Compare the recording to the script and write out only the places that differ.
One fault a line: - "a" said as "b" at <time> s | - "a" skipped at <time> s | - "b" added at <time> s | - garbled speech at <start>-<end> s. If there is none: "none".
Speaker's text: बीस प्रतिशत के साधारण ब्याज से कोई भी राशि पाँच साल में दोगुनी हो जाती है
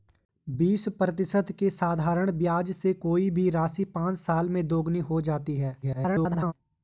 - garbled speech at 5.8-6.5 s